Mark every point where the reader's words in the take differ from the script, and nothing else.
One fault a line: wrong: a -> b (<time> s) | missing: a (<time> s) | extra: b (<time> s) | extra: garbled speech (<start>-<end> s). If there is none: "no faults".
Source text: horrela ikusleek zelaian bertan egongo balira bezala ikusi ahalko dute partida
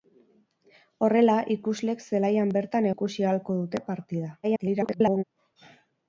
missing: egongo balira bezala (2.9 s)
extra: garbled speech (4.4-5.2 s)